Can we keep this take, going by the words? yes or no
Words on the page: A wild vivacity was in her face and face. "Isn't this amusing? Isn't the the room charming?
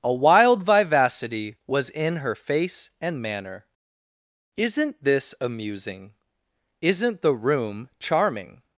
no